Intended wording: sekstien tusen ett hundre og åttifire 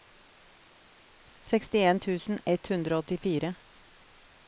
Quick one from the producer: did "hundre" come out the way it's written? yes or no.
yes